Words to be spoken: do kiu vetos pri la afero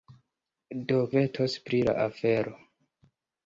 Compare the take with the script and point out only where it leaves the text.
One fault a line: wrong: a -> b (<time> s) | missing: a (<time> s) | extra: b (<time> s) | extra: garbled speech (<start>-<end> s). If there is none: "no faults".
missing: kiu (1.0 s)